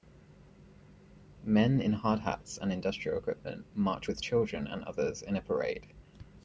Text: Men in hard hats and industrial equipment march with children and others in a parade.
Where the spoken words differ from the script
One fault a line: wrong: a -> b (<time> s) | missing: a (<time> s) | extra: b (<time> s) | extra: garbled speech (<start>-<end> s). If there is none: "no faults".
no faults